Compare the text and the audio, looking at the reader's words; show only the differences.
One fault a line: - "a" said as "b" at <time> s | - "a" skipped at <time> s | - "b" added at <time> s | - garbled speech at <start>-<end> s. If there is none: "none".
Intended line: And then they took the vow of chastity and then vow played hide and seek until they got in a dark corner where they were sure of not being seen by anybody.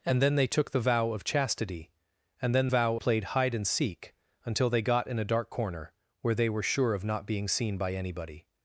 none